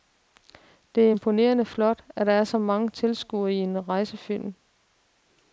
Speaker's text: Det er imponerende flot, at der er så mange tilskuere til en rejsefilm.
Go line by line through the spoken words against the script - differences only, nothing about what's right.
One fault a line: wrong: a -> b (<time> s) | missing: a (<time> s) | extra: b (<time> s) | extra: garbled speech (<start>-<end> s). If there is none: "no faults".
no faults